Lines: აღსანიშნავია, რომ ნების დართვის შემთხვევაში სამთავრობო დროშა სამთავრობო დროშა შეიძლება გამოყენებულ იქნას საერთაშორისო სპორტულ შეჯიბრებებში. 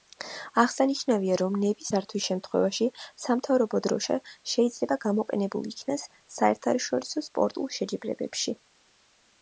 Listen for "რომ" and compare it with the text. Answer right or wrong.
right